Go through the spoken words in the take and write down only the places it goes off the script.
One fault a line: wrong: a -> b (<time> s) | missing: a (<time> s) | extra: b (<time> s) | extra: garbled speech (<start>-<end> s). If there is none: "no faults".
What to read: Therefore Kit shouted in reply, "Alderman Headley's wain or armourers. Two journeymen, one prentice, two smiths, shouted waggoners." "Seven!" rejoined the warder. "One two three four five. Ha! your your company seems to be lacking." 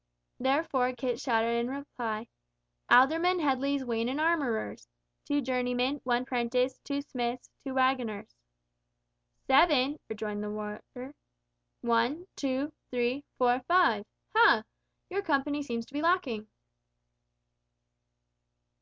wrong: or -> and (4.1 s)
wrong: shouted -> two (7.6 s)
missing: your (15.2 s)